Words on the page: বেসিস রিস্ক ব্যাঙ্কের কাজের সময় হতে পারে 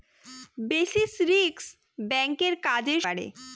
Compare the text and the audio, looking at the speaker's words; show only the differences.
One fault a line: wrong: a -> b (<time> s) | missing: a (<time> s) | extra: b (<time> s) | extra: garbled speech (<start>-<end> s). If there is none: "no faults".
missing: সময় হতে (3.0 s)